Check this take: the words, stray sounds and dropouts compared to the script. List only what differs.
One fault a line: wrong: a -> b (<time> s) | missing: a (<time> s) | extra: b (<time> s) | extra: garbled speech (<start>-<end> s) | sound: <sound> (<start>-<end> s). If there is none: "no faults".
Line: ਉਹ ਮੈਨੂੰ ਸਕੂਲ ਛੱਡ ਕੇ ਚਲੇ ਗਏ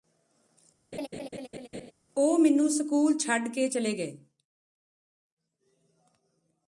sound: laugh (0.9-1.9 s)